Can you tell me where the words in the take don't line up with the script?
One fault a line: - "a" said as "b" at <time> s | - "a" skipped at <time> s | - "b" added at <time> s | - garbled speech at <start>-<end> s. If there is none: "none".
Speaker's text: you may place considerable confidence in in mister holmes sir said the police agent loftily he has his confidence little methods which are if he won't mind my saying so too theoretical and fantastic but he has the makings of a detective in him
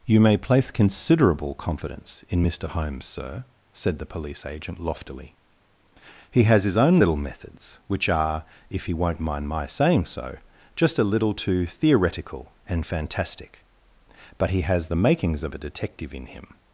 - "in" skipped at 2.4 s
- "confidence" said as "own" at 6.8 s
- "just a little" added at 10.7 s